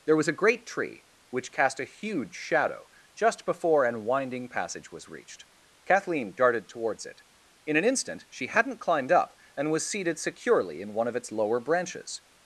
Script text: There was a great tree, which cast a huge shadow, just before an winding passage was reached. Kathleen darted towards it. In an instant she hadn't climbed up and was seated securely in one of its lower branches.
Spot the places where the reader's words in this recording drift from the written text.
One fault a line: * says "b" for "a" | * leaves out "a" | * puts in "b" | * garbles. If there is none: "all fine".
all fine